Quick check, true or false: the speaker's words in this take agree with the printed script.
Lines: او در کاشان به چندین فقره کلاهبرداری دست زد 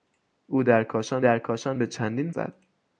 false